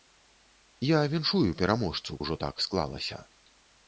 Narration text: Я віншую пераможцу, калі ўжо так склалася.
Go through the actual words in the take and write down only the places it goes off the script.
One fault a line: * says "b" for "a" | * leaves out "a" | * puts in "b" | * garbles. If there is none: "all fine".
* leaves out "калі"